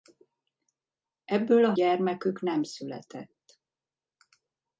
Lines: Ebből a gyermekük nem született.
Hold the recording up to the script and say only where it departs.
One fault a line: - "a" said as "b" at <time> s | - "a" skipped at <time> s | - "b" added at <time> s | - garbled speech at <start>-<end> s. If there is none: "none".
none